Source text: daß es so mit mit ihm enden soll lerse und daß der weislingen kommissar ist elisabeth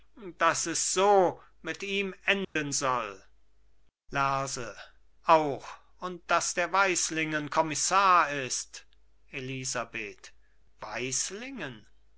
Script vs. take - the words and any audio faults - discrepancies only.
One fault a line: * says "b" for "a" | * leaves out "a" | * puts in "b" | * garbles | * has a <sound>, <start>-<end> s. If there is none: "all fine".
* leaves out "mit"
* has a dropout, 2.4-2.6 s
* puts in "auch"